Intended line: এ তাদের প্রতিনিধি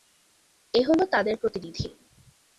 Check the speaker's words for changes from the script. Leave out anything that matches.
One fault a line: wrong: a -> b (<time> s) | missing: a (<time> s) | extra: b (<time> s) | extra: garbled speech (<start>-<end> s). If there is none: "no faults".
extra: হলো (0.9 s)